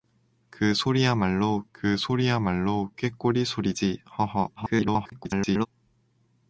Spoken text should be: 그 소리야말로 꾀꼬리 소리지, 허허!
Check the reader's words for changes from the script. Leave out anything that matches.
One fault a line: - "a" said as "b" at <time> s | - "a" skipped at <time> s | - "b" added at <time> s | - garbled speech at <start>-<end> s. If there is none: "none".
- "그 소리야말로" added at 1.7 s
- garbled speech at 4.6-5.7 s